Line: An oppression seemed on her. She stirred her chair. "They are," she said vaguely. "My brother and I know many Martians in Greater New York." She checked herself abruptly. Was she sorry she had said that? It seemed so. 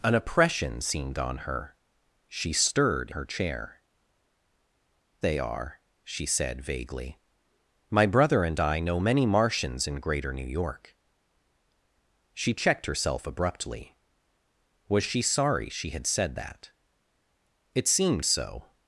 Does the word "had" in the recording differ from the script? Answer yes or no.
no